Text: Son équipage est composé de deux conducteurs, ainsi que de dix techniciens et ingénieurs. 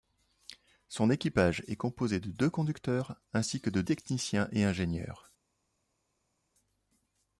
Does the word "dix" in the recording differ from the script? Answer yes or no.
yes